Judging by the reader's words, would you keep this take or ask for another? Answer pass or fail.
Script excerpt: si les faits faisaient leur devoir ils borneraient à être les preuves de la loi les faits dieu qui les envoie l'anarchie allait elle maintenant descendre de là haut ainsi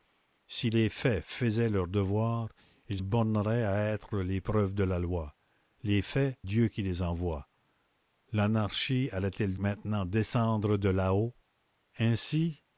pass